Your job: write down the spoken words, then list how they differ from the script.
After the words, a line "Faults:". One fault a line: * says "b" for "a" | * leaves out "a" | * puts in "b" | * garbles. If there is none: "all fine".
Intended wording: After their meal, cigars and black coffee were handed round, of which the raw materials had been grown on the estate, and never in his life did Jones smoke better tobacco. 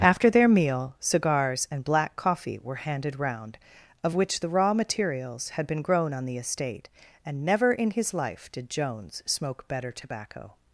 After their meal, cigars and black coffee were handed round, of which the raw materials had been grown on the estate, and never in his life did Jones smoke better tobacco.
Faults:
all fine